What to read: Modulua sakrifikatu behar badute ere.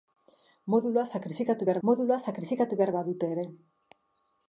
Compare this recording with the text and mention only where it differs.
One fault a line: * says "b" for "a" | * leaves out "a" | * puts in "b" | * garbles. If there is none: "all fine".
* puts in "modulua sakrifikatu behar"